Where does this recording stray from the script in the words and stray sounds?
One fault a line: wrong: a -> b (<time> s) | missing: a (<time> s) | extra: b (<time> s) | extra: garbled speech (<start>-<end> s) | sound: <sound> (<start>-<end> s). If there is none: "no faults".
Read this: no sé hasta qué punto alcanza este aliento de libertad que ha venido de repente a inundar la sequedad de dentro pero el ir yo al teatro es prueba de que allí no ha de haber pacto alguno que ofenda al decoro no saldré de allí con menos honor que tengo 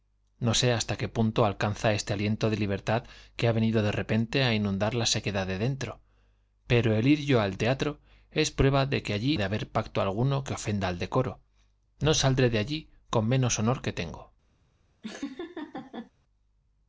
missing: no (9.4 s)
sound: laugh (15.0-16.1 s)